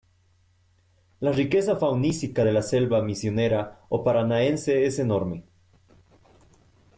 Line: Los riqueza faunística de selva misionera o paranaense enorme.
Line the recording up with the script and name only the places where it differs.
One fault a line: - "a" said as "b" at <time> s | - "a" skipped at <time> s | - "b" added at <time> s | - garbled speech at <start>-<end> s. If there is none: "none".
- "Los" said as "La" at 1.2 s
- "la" added at 2.5 s
- "es" added at 4.9 s